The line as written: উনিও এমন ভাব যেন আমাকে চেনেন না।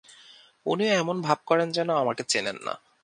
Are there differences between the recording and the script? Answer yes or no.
yes